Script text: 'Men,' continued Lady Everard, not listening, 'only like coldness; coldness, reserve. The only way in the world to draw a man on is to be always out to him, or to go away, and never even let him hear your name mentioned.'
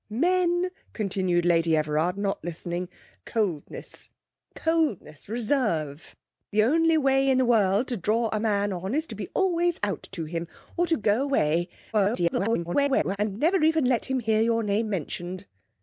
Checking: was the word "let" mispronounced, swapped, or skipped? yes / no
no